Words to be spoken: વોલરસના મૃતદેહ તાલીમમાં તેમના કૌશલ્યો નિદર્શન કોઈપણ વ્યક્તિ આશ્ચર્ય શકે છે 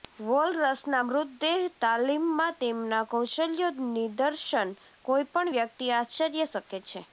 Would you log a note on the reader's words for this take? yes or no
no